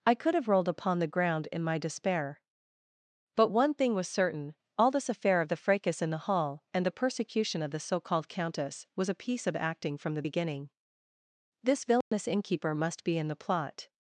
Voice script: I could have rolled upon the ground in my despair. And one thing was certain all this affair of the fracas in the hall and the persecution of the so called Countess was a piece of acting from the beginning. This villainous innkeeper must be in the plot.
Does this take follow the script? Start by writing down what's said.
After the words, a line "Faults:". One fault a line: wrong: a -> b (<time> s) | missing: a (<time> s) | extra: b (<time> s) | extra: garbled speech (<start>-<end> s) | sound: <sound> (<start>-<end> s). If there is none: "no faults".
I could have rolled upon the ground in my despair. But one thing was certain all this affair of the fracas in the hall and the persecution of the so called Countess was a piece of acting from the beginning. This villainous innkeeper must be in the plot.
Faults:
wrong: And -> But (3.4 s)
sound: dropout (12.0-12.1 s)